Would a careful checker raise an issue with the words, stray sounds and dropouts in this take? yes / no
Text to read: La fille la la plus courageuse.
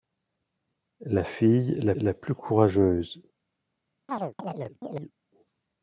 yes